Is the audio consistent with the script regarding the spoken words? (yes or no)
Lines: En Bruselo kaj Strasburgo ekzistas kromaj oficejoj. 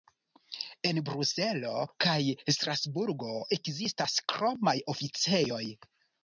yes